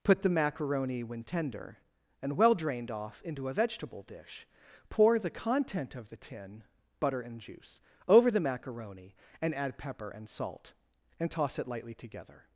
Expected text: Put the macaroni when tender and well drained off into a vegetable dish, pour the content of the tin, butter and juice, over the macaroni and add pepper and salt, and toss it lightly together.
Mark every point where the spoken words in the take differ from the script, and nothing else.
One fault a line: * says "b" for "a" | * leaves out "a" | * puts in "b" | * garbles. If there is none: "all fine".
all fine